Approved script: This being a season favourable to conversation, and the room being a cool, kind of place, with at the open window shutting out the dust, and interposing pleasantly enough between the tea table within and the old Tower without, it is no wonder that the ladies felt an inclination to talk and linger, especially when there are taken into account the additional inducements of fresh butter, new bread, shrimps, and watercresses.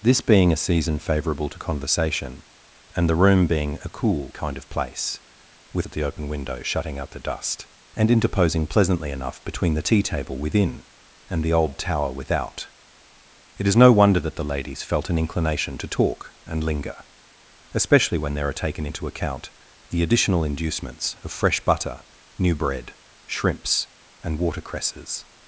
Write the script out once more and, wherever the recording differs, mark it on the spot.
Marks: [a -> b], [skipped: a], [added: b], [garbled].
This being a season favourable to conversation, and the room being a cool, kind of place, with at the open window shutting out the dust, and interposing pleasantly enough between the tea table within and the old Tower without, it is no wonder that the ladies felt an inclination to talk and linger, especially when there are taken into account the additional inducements of fresh butter, new bread, shrimps, and watercresses.